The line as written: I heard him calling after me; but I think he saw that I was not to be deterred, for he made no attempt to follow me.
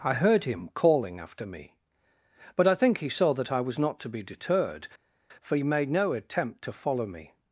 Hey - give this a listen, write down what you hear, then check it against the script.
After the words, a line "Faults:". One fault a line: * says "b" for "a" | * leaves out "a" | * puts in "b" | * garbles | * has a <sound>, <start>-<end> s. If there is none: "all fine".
I heard him calling after me; but I think he saw that I was not to be deterred, for he made no attempt to follow me.
Faults:
all fine